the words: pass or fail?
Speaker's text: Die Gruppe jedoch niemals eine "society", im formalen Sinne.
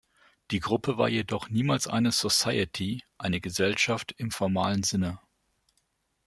fail